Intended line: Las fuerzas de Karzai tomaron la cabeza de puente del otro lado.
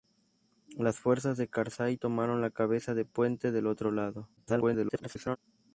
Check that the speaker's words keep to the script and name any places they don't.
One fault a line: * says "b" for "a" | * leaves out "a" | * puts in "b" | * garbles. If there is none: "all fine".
* garbles